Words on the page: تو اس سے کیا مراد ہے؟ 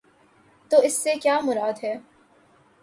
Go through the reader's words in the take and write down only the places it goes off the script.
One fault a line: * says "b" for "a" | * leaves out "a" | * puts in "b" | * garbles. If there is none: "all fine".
all fine